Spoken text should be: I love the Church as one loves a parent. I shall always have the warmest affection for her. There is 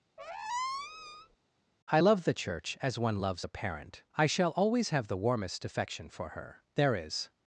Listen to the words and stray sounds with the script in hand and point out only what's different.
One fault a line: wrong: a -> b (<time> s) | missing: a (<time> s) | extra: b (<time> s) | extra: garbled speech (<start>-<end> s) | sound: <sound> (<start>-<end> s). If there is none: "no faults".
sound: squeak (0.2-1.4 s)